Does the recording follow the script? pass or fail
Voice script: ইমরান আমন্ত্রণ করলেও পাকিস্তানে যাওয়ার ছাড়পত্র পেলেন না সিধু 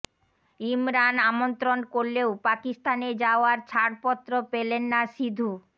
pass